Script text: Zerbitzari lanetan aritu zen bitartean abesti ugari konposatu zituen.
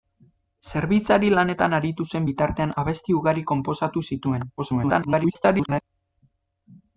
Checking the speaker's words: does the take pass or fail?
fail